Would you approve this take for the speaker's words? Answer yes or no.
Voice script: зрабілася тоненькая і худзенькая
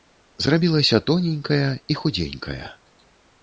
yes